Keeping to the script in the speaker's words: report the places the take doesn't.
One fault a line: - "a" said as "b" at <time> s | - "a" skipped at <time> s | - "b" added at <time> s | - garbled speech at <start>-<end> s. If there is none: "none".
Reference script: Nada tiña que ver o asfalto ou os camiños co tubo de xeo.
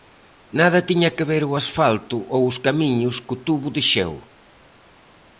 none